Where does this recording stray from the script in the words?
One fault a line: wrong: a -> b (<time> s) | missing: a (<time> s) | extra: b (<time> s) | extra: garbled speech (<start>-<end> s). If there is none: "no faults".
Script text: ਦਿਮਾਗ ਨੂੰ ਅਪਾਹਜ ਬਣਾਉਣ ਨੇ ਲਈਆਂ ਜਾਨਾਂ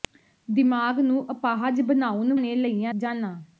no faults